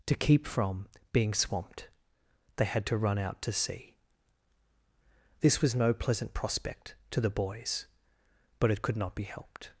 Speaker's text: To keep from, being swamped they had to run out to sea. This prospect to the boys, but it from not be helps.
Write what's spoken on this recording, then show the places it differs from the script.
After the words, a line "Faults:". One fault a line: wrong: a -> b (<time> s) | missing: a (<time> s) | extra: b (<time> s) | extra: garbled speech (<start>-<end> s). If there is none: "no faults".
To keep from, being swamped they had to run out to sea. This was no pleasant prospect to the boys, but it could not be helped.
Faults:
extra: was no pleasant (5.6 s)
wrong: from -> could (8.8 s)
wrong: helps -> helped (9.2 s)